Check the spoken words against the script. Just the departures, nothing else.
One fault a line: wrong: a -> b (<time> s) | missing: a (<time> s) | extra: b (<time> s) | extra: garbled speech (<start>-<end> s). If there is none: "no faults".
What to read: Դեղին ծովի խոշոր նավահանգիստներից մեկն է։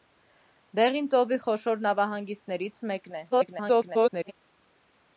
extra: garbled speech (3.3-4.3 s)